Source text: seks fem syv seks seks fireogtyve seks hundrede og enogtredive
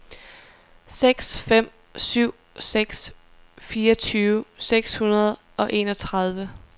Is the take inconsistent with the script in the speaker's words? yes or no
yes